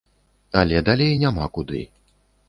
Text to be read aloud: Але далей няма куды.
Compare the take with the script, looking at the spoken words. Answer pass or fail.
pass